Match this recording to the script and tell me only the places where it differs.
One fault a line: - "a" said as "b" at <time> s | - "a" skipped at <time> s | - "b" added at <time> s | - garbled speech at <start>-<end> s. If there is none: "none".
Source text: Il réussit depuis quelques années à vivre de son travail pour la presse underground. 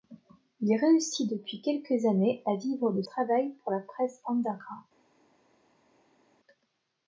- "son" skipped at 3.0 s